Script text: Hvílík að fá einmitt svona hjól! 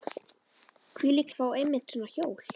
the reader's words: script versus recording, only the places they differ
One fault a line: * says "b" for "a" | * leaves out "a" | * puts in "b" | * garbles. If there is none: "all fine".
all fine